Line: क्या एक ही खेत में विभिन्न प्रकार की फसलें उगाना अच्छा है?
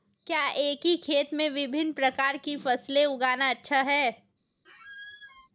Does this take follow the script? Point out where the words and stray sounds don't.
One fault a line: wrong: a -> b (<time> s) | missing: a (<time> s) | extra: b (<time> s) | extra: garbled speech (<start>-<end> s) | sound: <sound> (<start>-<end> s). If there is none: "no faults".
sound: squeak (4.6-5.5 s)